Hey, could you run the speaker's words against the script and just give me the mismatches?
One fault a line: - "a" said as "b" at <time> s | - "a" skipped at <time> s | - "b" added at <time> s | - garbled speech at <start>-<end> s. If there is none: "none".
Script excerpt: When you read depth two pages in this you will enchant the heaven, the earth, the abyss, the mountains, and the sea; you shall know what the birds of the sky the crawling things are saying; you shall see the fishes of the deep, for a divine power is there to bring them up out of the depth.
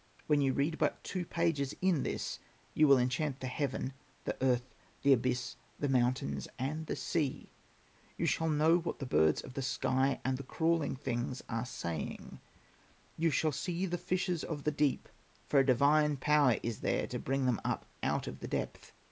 - "depth" said as "but" at 0.8 s
- "and" added at 10.2 s